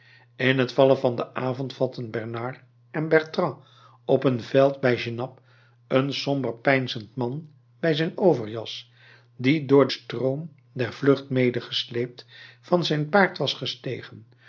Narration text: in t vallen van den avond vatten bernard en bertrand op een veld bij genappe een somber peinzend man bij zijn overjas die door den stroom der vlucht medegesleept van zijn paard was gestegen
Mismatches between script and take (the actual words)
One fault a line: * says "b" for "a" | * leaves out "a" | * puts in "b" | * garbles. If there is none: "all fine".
* leaves out "den"